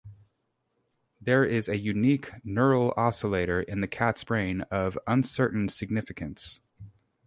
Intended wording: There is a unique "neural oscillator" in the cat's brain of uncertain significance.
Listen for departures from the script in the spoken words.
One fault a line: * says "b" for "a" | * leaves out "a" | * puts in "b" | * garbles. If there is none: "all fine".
all fine